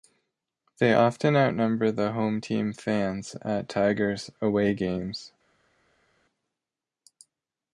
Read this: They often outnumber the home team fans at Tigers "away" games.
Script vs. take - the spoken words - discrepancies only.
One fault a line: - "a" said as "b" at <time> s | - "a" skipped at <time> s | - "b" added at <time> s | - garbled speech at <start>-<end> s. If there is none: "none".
none